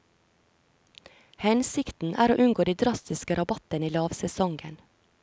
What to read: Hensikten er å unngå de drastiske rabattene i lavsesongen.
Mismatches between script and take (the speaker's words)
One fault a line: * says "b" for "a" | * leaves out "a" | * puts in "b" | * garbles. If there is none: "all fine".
all fine